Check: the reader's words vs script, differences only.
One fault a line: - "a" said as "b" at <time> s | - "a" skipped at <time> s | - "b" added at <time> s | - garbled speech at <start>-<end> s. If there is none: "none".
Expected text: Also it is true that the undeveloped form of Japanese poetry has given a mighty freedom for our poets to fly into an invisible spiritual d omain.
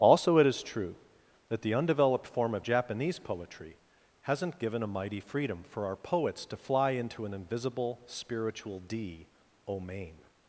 - "has" said as "hasn't" at 4.2 s